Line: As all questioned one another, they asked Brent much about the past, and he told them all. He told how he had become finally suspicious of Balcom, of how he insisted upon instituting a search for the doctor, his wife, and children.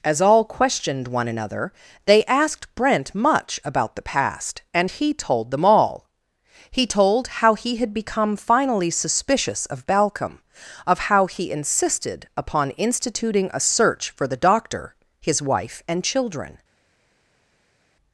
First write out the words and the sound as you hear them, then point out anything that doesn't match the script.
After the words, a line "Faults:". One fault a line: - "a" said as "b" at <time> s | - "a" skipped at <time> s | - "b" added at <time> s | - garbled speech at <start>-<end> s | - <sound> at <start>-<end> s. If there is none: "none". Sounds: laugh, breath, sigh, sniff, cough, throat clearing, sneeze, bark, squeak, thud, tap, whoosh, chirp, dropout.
As all questioned one another, they asked Brent much about the past, and he told them all. He told how he had become finally suspicious of Balcom, of how he insisted upon instituting a search for the doctor, his wife, and children.
Faults:
none